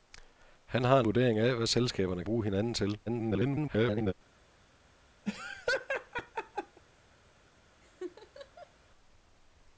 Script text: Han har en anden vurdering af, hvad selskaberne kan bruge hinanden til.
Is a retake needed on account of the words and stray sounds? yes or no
yes